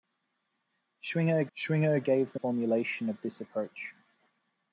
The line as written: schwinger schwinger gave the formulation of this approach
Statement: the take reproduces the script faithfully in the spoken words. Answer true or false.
true